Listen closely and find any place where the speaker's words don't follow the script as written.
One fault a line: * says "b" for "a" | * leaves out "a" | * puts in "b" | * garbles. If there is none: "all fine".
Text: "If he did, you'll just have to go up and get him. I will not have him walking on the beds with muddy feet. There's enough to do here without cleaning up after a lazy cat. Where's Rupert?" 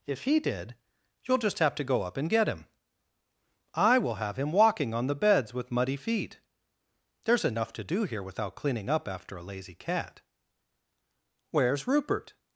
* leaves out "not"